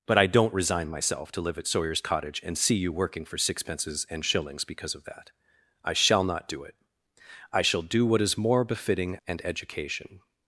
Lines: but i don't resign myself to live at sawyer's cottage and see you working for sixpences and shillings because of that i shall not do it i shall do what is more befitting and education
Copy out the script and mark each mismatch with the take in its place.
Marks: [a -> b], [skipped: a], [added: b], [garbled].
but i don't resign myself to live at sawyer's cottage and see you working for sixpences and shillings because of that i shall not do it i shall do what is more befitting and education